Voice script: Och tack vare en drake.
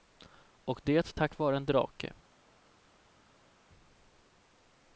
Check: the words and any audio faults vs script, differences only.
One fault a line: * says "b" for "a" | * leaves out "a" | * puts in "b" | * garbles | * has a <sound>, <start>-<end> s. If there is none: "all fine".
* puts in "det"